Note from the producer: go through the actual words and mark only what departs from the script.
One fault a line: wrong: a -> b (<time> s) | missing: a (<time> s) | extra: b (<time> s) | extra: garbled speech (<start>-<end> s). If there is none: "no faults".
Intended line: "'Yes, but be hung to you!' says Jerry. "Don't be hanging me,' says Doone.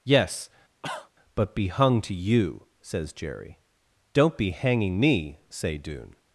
wrong: says -> say (5.5 s)